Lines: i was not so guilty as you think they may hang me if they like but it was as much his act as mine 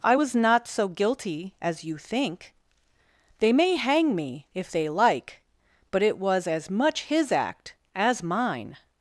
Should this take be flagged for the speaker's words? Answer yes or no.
no